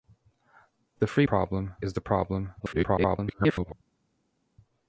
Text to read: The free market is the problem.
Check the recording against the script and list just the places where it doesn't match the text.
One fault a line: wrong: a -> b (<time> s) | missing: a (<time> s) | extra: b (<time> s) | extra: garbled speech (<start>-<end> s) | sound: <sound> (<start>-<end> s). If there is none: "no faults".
wrong: market -> problem (1.2 s)
extra: garbled speech (2.6-3.7 s)